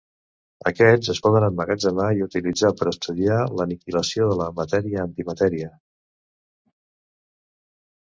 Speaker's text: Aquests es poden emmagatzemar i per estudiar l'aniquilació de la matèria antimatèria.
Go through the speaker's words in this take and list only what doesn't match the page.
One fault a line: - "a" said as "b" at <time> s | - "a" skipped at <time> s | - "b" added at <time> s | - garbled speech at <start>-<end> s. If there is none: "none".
- "utilitzar" added at 2.3 s